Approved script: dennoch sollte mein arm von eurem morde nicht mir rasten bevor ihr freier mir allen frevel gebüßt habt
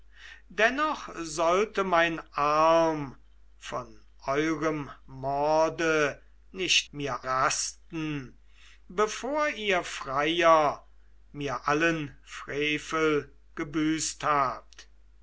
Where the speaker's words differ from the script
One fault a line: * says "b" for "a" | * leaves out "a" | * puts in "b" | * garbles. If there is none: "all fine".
all fine